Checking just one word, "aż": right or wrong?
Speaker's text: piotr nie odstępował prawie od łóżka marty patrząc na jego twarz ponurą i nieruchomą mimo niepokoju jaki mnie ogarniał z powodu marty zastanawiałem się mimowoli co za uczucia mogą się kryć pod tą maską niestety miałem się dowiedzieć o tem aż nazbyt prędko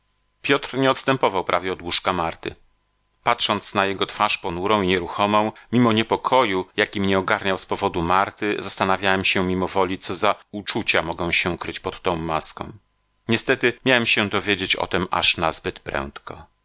right